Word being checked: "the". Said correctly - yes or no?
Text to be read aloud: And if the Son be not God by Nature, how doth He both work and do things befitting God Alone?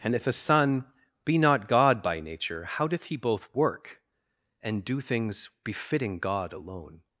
no